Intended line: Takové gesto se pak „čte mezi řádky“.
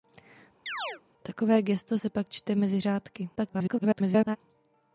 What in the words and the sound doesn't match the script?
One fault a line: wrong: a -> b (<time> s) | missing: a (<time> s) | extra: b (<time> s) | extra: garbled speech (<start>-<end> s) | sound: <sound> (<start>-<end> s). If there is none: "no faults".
sound: chirp (0.7-1.0 s)
extra: garbled speech (3.4-4.4 s)